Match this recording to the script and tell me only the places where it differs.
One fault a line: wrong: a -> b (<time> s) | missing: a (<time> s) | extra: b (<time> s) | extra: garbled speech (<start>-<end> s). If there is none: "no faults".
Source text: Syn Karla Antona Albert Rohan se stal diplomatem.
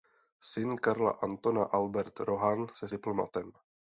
missing: stal (2.9 s)